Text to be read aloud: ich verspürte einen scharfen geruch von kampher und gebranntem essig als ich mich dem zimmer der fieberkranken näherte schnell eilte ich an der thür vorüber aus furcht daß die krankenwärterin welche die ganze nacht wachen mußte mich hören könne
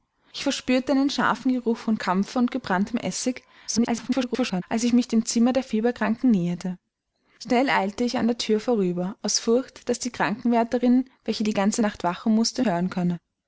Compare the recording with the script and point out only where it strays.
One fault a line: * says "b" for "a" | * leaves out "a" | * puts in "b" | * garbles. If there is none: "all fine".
* garbles
* leaves out "mich"